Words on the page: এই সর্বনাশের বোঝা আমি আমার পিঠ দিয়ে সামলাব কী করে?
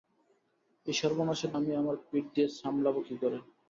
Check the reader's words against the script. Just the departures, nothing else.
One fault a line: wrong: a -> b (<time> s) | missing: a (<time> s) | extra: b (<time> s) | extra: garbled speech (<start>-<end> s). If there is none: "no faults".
missing: বোঝা (1.5 s)